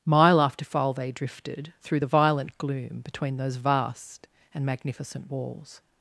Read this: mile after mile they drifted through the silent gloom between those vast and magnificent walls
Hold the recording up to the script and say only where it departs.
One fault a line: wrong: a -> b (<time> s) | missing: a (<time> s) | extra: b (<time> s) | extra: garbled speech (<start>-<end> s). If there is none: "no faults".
wrong: mile -> file (0.7 s)
wrong: silent -> violent (2.1 s)